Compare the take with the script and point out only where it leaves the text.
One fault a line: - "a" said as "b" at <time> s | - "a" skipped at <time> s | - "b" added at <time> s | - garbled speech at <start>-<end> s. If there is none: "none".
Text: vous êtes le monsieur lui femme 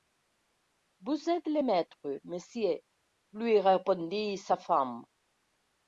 - "maître" added at 1.6 s
- "répondit sa" added at 3.6 s